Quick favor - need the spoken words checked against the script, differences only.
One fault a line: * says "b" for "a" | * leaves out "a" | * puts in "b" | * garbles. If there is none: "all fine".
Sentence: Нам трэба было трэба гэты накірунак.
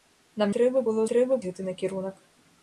all fine